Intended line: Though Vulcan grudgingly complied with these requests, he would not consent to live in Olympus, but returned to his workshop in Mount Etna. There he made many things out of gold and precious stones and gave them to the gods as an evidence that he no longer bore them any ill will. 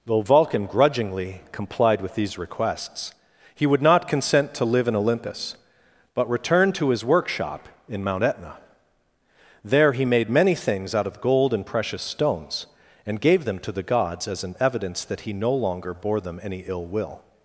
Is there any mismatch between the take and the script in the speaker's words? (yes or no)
no